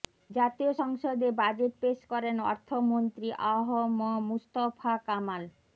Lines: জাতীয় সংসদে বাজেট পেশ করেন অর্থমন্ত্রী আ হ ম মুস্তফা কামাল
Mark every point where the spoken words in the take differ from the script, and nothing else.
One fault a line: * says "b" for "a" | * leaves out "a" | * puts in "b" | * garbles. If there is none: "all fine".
all fine